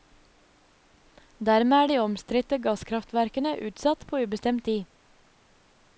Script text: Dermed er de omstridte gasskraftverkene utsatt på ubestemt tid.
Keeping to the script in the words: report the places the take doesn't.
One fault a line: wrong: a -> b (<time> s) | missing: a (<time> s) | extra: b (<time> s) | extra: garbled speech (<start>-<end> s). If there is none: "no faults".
no faults